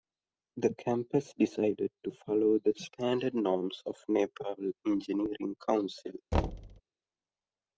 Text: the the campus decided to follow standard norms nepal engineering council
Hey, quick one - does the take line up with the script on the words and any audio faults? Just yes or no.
no